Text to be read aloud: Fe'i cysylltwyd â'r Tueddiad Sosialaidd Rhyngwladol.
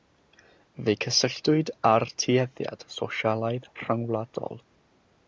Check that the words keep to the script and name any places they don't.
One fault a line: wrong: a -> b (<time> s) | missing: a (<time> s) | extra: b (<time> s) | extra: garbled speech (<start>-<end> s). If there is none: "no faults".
no faults